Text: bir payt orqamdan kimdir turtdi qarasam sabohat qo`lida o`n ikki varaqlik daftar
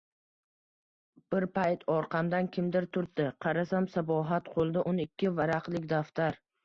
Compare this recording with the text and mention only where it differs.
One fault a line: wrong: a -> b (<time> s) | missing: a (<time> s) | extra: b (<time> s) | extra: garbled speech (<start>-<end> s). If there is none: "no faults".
no faults